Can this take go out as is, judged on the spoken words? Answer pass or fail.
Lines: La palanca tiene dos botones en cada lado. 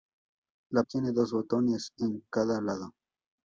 fail